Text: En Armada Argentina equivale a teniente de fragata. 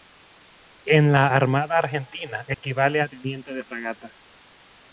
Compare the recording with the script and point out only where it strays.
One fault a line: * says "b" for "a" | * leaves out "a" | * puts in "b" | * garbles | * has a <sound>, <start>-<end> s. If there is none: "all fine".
* puts in "la"
* has a dropout, 2.5-2.6 s